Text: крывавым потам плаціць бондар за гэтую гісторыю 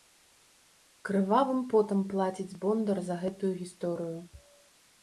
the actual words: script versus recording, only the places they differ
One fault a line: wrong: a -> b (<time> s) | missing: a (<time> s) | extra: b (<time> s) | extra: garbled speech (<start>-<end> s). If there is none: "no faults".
no faults